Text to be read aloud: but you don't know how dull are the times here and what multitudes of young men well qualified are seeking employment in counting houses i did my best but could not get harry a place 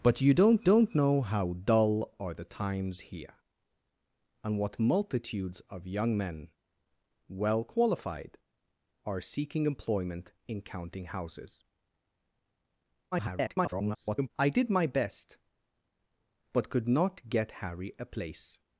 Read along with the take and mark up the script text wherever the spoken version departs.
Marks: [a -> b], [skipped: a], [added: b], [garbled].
but you don't [added: don't] know how dull are the times here and what multitudes of young men well qualified are seeking employment in counting houses [garbled] i did my best but could not get harry a place